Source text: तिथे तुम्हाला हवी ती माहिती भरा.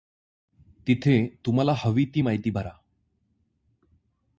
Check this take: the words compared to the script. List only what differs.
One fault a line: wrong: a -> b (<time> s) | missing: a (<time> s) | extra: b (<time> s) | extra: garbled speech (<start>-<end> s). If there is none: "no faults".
no faults